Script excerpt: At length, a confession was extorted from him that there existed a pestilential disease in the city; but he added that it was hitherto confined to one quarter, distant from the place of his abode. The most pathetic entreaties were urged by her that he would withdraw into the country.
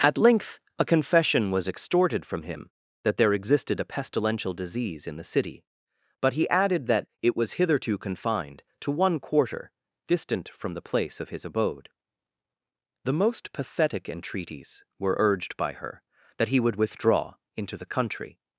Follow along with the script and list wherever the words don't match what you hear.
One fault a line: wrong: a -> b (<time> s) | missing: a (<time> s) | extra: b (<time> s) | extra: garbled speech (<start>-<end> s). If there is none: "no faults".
no faults